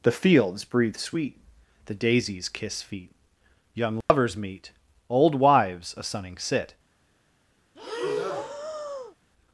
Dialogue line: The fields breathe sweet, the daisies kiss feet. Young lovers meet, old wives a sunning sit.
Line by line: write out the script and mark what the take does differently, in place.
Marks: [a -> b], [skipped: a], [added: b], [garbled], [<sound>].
The fields breathe sweet, the daisies kiss feet. Young lovers [dropout] meet, old wives a sunning sit. [breath]